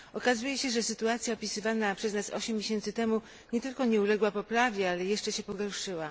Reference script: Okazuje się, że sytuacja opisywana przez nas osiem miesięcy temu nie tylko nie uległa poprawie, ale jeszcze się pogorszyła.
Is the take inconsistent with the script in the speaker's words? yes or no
no